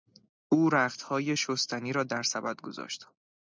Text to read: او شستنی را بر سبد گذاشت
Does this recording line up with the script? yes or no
no